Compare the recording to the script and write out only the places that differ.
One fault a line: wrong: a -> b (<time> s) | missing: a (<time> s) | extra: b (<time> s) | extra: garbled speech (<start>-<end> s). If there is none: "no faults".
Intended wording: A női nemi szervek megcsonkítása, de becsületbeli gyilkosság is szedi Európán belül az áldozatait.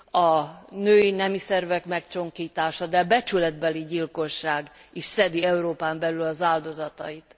no faults